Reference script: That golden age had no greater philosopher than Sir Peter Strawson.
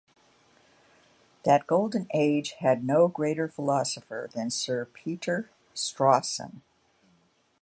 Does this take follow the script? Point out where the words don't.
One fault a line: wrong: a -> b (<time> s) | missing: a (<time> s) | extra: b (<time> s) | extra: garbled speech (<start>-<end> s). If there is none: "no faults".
no faults